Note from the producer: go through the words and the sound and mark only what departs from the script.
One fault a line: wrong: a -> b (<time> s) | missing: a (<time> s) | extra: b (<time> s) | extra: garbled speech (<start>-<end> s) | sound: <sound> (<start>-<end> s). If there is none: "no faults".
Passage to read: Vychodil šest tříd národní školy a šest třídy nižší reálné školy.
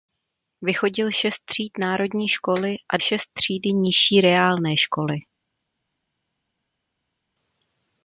no faults